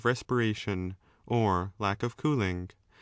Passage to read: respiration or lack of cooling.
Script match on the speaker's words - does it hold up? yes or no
yes